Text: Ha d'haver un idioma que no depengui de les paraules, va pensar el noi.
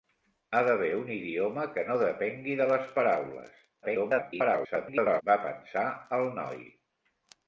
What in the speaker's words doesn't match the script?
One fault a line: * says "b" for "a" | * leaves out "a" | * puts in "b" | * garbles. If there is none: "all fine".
* garbles